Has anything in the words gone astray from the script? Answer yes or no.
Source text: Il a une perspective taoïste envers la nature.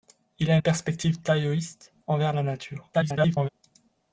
yes